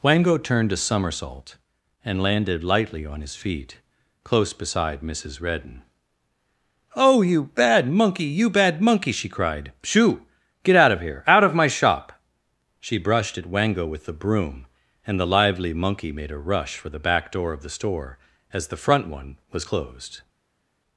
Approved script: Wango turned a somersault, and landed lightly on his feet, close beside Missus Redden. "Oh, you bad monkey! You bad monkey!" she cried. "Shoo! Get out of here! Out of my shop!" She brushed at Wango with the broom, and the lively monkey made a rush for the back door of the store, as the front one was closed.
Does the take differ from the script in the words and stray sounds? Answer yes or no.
no